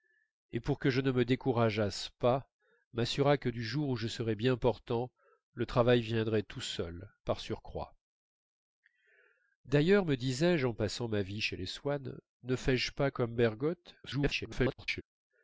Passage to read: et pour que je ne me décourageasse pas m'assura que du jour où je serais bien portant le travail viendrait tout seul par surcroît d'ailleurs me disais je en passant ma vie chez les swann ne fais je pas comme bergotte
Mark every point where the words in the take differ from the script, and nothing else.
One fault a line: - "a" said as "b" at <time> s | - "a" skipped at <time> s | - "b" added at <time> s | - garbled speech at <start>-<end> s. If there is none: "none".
- garbled speech at 14.0-15.0 s